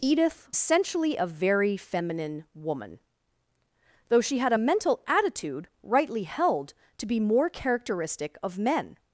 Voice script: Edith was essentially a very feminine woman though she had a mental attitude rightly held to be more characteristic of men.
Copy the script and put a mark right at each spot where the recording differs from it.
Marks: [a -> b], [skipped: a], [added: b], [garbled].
Edith [skipped: was] essentially a very feminine woman though she had a mental attitude rightly held to be more characteristic of men.